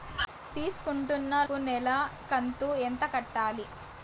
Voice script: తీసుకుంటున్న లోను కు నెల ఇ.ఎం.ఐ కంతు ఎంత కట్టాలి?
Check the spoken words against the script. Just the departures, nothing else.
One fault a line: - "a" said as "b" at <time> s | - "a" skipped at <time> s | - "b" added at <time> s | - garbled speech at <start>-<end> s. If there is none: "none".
- "లోను" skipped at 1.3 s
- "ఇ.ఎం.ఐ" skipped at 1.9 s